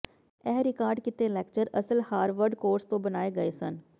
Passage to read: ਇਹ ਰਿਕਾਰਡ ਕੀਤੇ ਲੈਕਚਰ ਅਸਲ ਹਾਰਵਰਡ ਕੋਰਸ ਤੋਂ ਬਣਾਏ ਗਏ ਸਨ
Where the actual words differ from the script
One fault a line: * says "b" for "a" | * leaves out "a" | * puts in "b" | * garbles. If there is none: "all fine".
all fine